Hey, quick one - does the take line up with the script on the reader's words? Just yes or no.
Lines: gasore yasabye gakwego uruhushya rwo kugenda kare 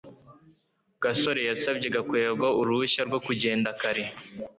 yes